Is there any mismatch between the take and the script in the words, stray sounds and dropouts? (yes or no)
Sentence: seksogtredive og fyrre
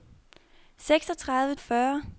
no